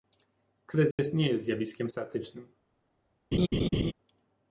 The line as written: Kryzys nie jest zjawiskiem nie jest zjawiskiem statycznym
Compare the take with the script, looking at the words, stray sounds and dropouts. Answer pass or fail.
fail